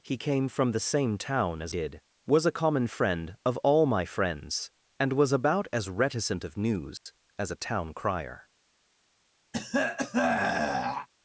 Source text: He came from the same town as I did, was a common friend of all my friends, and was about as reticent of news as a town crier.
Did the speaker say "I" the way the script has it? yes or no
no